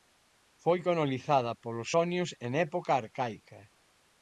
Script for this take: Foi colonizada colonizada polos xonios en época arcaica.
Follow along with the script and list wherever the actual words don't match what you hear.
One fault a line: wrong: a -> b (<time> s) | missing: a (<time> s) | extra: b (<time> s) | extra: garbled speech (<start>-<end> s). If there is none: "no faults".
missing: colonizada (1.5 s)